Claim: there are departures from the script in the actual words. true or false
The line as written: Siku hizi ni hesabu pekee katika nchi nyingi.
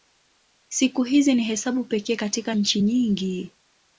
false